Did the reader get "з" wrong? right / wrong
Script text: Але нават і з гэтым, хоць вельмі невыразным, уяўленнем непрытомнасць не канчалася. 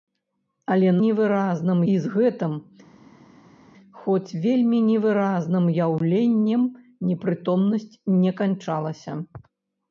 right